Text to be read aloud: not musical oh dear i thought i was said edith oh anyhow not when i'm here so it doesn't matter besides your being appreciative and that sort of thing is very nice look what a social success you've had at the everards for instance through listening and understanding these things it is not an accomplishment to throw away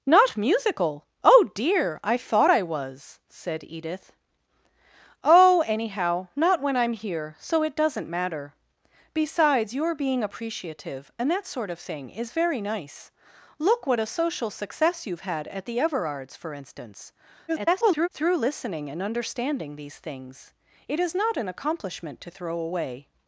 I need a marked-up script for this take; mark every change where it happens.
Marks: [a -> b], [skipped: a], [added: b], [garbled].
not musical oh dear i thought i was said edith oh anyhow not when i'm here so it doesn't matter besides your being appreciative and that sort of thing is very nice look what a social success you've had at the everards for instance [garbled] through listening and understanding these things it is not an accomplishment to throw away